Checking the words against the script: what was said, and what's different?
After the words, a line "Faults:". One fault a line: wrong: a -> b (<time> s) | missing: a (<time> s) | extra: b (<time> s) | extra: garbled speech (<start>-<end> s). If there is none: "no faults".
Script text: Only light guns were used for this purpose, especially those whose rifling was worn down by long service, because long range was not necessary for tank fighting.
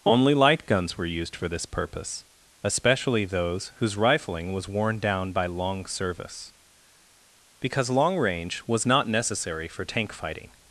Only light guns were used for this purpose, especially those whose rifling was worn down by long service, because long range was not necessary for tank fighting.
Faults:
no faults